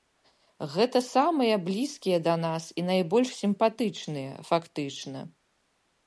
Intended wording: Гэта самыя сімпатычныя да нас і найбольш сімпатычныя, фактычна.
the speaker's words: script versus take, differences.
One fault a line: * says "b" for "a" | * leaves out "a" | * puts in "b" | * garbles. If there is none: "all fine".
* says "блізкія" for "сімпатычныя"